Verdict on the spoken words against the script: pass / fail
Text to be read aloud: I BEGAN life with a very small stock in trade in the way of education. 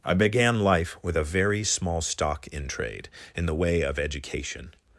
pass